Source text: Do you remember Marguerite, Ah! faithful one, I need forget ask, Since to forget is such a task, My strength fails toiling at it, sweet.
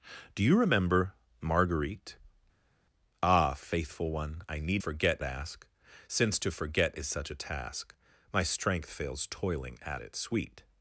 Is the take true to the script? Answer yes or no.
yes